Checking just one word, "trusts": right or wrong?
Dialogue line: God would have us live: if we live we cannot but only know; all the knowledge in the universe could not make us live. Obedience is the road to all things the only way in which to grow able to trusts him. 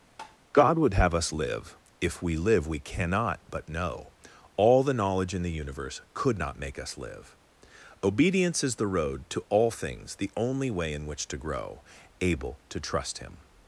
wrong